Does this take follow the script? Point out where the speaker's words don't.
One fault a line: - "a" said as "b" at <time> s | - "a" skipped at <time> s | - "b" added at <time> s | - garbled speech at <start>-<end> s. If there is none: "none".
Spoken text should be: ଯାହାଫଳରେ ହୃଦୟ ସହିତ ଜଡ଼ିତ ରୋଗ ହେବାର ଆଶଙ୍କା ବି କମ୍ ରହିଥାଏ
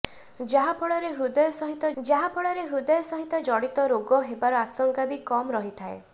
- "ଯାହାଫଳରେ ହୃଦୟ ସହିତ" added at 2.0 s